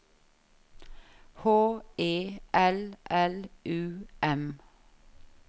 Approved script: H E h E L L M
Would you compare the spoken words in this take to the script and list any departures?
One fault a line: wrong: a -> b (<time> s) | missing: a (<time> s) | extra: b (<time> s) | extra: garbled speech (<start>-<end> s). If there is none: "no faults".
wrong: h E -> L (2.5 s)
wrong: L -> U (3.6 s)